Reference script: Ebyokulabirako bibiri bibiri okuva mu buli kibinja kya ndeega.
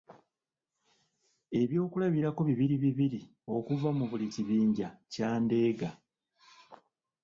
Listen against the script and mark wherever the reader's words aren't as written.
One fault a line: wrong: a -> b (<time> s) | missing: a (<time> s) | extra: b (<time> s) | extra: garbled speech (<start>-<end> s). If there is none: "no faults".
no faults